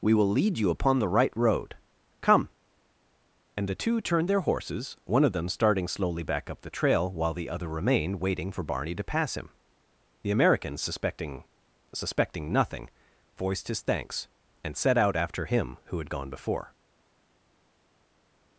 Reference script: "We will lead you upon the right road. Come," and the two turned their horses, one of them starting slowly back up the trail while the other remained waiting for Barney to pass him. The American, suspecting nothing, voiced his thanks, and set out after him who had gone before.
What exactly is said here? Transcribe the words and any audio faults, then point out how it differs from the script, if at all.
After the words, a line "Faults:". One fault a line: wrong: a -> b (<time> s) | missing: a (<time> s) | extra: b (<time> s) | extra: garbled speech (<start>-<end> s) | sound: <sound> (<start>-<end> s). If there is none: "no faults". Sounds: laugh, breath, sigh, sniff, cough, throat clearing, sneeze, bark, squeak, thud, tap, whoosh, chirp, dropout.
"We will lead you upon the right road. Come," and the two turned their horses, one of them starting slowly back up the trail while the other remained waiting for Barney to pass him. The American, suspecting suspecting nothing, voiced his thanks, and set out after him who had gone before.
Faults:
extra: suspecting (11.9 s)